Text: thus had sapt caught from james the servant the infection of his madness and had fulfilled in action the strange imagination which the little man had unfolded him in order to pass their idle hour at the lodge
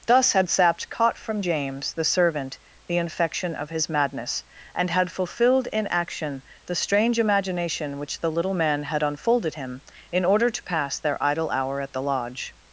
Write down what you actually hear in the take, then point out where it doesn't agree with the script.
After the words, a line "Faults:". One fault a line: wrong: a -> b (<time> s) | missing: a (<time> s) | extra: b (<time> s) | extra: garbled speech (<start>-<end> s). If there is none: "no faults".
thus had sapt caught from james the servant the infection of his madness and had fulfilled in action the strange imagination which the little man had unfolded him in order to pass their idle hour at the lodge
Faults:
no faults